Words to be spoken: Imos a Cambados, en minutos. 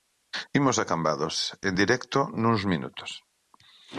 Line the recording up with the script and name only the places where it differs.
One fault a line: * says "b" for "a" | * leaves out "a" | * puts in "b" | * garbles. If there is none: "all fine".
* puts in "directo nuns"